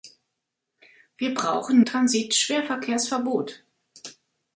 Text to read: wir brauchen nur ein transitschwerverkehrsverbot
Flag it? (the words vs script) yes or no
yes